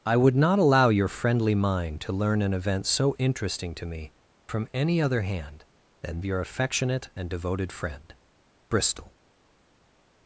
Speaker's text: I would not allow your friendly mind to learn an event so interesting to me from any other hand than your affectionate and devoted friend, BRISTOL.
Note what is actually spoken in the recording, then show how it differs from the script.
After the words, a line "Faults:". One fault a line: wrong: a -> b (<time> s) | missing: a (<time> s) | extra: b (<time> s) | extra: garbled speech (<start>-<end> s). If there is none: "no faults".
I would not allow your friendly mind to learn an event so interesting to me from any other hand than your affectionate and devoted friend, BRISTOL.
Faults:
no faults